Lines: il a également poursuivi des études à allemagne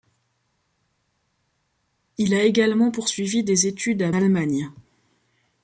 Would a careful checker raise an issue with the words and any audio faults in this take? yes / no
no